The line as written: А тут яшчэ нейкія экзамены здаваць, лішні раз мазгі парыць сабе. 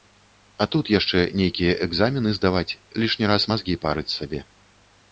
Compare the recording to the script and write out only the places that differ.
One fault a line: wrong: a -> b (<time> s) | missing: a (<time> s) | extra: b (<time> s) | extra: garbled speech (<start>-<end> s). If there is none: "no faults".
no faults